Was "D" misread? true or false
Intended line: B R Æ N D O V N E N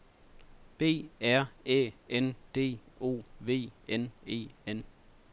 false